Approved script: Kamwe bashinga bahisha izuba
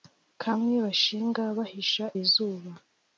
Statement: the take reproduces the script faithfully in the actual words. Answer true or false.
true